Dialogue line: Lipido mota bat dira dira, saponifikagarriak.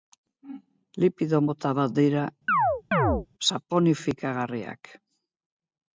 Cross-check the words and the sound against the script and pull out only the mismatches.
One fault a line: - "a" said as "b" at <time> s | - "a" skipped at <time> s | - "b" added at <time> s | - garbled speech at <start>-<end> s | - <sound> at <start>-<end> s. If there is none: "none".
- "dira" skipped at 2.3 s
- chirp at 2.5-3.3 s